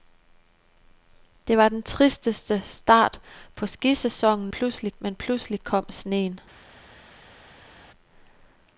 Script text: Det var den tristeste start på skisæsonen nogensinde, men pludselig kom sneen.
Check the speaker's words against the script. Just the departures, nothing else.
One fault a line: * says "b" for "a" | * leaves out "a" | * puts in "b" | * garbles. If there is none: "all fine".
* says "pludselig" for "nogensinde"